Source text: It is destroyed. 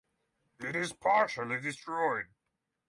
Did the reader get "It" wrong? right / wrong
right